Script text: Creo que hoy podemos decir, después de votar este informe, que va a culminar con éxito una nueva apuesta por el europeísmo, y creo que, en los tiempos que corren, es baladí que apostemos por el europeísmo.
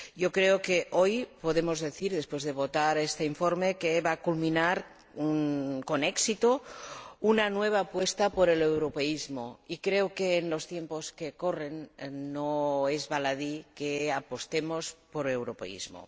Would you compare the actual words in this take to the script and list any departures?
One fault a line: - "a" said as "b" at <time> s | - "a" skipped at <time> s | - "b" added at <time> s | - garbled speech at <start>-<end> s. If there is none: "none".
- "no" added at 12.1 s